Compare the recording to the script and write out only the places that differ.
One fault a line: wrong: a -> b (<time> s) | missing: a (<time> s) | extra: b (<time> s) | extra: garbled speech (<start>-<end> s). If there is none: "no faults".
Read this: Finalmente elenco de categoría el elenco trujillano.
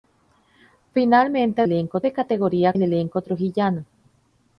no faults